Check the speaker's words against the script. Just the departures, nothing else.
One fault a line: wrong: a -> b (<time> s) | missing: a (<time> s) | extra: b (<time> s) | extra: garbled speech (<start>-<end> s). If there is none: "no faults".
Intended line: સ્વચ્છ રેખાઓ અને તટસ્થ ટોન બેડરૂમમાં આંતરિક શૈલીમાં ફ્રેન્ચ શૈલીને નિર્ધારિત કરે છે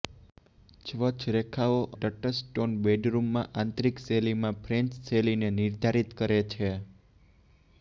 missing: અને (1.8 s)